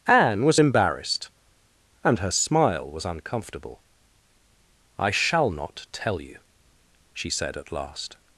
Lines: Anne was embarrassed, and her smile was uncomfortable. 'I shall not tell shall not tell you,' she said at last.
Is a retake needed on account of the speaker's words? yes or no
yes